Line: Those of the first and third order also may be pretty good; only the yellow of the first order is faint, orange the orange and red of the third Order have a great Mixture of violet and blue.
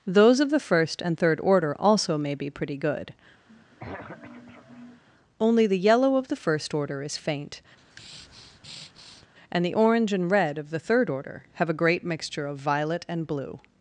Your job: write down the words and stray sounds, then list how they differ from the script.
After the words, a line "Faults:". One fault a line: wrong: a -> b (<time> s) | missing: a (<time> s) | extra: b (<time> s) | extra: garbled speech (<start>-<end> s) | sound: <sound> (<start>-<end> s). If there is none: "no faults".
Those of the first and third order also may be pretty good; only the yellow of the first order is faint, and the orange and red of the third Order have a great Mixture of violet and blue.
Faults:
sound: throat clearing (3.5-5.0 s)
sound: breath (7.8-9.3 s)
wrong: orange -> and (9.5 s)